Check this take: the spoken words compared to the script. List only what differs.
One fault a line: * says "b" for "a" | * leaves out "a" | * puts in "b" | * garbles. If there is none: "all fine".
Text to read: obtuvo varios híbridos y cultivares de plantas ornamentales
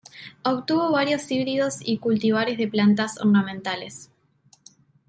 all fine